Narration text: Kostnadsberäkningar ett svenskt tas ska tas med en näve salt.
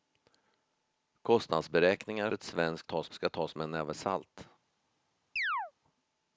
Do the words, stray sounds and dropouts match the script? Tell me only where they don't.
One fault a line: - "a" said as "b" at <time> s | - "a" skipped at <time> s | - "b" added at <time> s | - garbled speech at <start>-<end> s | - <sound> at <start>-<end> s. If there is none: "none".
- chirp at 5.4-5.7 s